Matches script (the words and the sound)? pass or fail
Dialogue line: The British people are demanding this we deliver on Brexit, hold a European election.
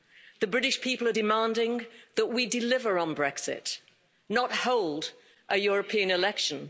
fail